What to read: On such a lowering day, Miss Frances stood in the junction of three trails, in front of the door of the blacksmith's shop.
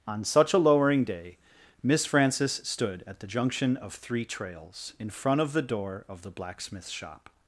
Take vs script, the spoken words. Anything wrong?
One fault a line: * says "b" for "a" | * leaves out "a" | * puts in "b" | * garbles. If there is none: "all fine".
* says "at" for "in"